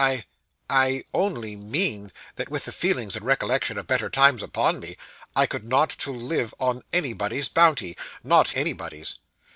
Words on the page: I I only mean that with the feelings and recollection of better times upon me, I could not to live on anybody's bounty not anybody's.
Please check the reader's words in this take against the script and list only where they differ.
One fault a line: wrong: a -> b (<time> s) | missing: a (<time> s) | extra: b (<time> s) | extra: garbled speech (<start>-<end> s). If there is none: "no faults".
no faults